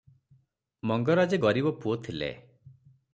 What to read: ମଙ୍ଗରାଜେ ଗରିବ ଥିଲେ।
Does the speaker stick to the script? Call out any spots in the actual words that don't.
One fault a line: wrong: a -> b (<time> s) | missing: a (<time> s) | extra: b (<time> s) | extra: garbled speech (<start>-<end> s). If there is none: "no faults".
extra: ପୁଅ (1.8 s)